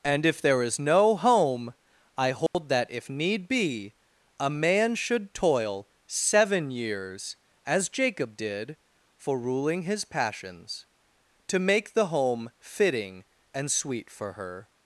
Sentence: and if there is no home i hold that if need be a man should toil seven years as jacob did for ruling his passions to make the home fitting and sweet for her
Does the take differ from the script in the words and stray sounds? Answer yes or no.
yes